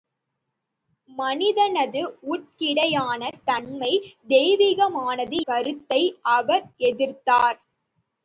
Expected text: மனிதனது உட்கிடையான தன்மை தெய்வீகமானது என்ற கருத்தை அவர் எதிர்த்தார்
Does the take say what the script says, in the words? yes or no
no